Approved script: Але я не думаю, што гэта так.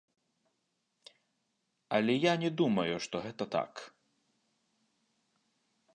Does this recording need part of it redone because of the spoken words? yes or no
no